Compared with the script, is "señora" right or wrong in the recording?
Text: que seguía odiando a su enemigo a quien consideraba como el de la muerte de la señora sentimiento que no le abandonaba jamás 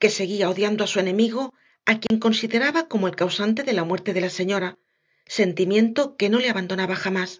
right